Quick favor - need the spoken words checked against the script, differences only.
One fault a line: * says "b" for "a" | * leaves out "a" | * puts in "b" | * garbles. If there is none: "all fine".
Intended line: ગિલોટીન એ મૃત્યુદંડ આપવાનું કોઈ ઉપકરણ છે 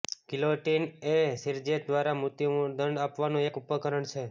* puts in "શિરચ્છેદ દ્વારા"
* says "એક" for "કોઈ"